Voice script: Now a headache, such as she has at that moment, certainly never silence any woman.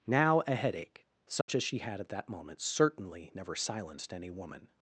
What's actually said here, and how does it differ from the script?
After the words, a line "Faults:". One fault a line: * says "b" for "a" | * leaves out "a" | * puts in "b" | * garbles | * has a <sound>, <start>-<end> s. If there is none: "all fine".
Now a headache, such as she had at that moment, certainly never silenced any woman.
Faults:
* has a dropout, 1.4-1.5 s
* says "had" for "has"
* says "silenced" for "silence"